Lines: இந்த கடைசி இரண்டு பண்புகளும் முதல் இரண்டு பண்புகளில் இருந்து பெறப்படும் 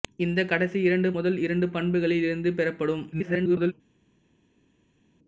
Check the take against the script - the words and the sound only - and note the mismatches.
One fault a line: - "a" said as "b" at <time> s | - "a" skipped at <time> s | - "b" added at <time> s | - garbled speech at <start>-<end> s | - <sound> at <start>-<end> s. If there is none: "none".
- "பண்புகளும்" skipped at 1.1 s
- garbled speech at 3.1-3.7 s